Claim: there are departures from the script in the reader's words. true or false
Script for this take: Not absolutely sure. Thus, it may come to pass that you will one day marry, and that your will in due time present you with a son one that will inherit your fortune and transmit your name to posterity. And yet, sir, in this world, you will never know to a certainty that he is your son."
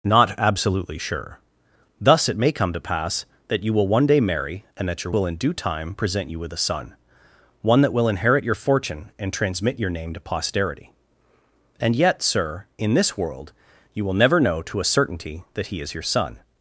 false